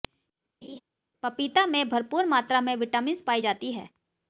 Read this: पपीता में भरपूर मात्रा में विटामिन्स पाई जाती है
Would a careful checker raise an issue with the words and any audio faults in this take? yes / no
yes